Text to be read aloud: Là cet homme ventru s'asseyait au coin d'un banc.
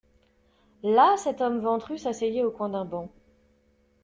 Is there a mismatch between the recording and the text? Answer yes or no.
no